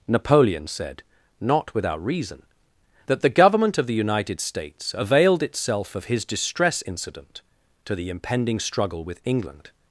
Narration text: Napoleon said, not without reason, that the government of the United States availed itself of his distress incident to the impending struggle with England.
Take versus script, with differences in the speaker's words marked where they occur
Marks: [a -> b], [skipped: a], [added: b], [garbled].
Napoleon said, not without reason, that the government of the United States availed itself of his distress incident to the impending struggle with England.